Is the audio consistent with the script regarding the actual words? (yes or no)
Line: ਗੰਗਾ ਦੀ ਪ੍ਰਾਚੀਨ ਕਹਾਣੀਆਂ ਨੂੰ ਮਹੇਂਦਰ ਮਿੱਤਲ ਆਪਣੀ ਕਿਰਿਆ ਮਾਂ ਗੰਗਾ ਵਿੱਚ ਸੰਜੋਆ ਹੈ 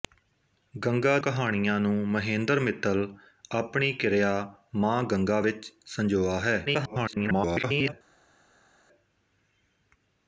no